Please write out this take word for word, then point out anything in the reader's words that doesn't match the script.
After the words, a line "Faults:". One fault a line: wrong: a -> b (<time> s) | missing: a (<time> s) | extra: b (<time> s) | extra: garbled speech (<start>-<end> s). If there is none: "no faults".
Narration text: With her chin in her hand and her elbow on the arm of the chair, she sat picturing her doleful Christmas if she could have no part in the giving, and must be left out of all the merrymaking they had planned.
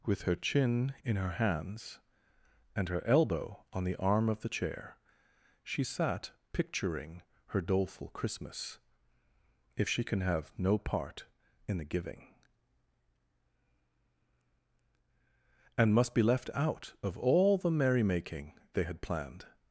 With her chin in her hands and her elbow on the arm of the chair, she sat picturing her doleful Christmas if she can have no part in the giving, and must be left out of all the merrymaking they had planned.
Faults:
wrong: hand -> hands (1.3 s)
wrong: could -> can (10.0 s)